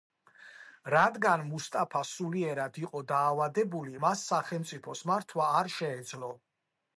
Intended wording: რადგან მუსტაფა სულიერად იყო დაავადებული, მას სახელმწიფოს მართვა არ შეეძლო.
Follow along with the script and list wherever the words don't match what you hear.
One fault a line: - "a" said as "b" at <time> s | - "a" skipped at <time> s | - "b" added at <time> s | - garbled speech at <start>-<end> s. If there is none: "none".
none